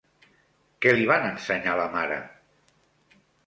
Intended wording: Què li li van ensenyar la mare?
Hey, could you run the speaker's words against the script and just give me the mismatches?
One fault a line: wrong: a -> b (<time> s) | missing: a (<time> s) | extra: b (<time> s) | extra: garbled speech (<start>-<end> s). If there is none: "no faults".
missing: li (1.1 s)